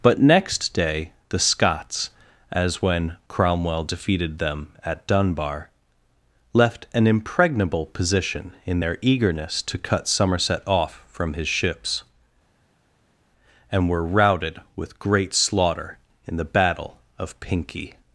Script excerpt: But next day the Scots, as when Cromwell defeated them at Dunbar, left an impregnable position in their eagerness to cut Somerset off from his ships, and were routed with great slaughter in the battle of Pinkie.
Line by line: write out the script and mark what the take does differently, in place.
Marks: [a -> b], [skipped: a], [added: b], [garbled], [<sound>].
But next day the Scots, as when Cromwell defeated them at Dunbar, left an impregnable position in their eagerness to cut Somerset off from his ships, and were routed with great slaughter in the battle of Pinkie.